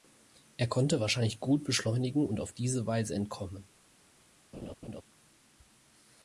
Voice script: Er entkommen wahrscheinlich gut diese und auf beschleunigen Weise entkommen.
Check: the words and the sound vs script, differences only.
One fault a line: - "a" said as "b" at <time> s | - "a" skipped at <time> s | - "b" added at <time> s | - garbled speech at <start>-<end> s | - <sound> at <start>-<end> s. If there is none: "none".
- "entkommen" said as "konnte" at 0.7 s
- "diese" said as "beschleunigen" at 1.6 s
- "beschleunigen" said as "diese" at 2.5 s
- laugh at 4.5-5.0 s